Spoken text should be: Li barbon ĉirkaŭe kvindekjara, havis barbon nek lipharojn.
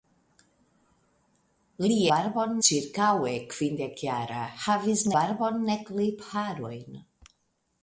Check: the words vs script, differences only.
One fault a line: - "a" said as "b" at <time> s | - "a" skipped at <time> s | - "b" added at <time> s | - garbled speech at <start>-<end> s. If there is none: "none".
none